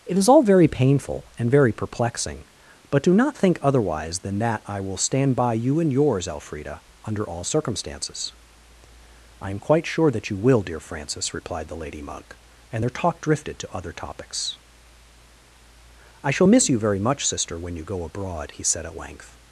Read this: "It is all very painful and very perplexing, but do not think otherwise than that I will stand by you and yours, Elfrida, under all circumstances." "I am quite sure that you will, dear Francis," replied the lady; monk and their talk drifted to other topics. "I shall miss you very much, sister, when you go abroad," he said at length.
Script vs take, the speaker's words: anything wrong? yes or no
no